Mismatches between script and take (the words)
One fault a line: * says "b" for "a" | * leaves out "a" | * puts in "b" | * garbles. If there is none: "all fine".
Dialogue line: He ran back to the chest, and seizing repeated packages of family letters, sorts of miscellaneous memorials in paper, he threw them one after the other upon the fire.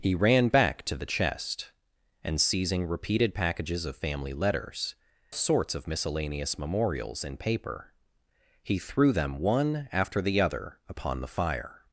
all fine